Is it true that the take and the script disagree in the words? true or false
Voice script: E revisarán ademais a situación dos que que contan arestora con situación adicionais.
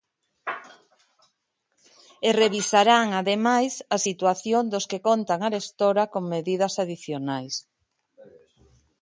true